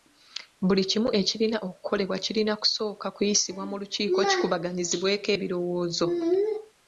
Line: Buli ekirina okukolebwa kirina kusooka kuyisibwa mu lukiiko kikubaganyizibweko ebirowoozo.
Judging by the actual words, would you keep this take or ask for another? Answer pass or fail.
fail